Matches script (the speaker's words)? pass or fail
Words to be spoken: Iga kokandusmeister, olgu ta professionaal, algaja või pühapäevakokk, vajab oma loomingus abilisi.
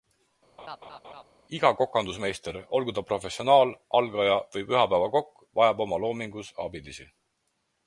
pass